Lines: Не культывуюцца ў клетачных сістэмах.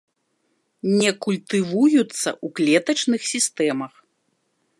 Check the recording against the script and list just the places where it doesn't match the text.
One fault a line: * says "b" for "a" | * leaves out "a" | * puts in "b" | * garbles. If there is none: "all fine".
all fine